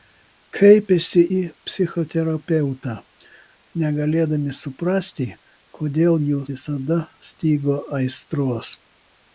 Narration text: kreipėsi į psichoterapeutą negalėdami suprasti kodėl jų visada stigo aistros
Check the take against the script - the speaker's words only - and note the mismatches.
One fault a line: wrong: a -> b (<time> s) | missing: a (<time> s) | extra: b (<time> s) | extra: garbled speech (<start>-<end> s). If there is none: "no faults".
no faults